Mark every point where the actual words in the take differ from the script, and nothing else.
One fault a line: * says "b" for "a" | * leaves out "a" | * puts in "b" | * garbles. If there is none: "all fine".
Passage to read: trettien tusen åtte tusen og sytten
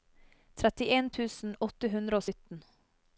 * says "hundre" for "tusen"